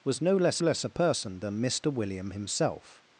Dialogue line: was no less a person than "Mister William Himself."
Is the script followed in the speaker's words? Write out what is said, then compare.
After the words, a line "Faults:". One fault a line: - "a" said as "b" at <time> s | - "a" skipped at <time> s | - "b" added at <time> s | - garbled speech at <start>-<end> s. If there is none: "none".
was no less less a person than "Mister William Himself."
Faults:
- "less" added at 0.6 s